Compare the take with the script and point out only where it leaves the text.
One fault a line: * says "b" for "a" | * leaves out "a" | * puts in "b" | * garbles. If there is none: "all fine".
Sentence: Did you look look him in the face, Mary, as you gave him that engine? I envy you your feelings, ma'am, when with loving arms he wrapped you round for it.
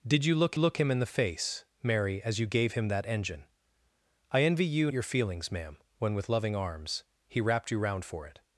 all fine